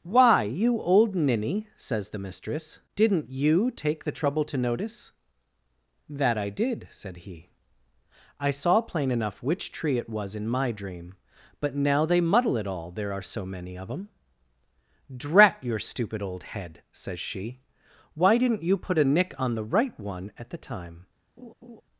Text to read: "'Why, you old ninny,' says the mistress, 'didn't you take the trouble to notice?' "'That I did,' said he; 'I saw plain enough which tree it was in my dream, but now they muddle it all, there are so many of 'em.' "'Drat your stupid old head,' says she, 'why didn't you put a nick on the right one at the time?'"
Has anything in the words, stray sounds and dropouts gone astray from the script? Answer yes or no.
yes